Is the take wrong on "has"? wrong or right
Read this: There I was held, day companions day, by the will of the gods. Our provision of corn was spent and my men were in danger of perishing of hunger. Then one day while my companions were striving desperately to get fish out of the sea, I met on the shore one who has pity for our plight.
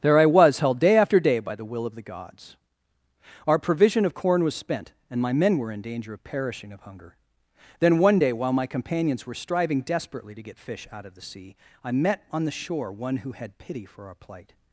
wrong